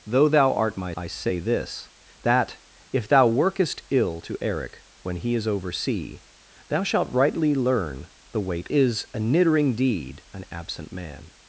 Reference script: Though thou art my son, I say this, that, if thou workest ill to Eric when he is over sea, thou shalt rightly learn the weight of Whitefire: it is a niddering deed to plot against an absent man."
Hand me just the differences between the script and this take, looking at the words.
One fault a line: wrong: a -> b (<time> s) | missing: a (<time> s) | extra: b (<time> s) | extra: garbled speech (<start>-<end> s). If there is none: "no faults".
missing: son (0.9 s)
missing: of Whitefire it (8.7 s)
missing: to plot against (10.2 s)